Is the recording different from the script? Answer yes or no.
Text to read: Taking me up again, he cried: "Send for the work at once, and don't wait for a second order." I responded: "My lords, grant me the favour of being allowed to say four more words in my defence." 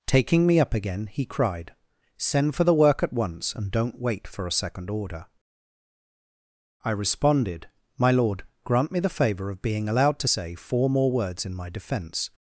yes